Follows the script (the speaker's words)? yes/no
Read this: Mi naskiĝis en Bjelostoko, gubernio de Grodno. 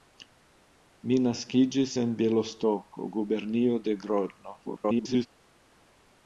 no